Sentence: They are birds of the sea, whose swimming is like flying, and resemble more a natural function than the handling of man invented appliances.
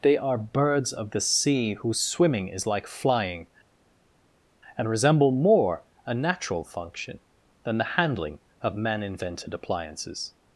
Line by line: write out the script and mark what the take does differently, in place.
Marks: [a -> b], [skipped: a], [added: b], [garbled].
They are birds of the sea, whose swimming is like flying, and resemble more a natural function than the handling of man invented appliances.